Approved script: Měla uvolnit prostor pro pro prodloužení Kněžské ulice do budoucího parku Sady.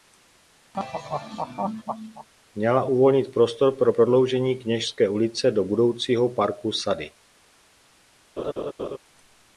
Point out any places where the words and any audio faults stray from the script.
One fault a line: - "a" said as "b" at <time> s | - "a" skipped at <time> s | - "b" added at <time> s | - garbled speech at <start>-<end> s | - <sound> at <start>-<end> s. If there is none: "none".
- laugh at 0.7-2.3 s
- "pro" skipped at 3.9 s
- laugh at 8.4-9.0 s